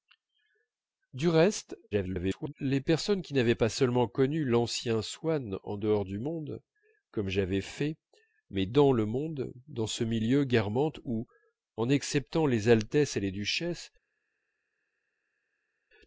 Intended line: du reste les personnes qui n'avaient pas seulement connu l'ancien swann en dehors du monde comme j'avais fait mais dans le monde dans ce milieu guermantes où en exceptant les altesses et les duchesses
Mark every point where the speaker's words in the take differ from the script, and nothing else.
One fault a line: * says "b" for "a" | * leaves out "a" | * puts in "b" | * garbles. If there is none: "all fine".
* garbles